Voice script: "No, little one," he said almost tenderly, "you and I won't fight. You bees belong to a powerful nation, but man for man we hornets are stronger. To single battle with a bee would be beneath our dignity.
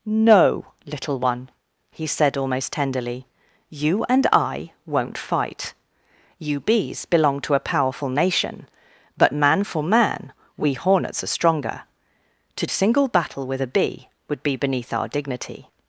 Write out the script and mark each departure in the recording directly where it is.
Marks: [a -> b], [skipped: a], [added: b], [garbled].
"No, little one," he said almost tenderly, "you and I won't fight. You bees belong to a powerful nation, but man for man we hornets are stronger. To single battle with a bee would be beneath our dignity.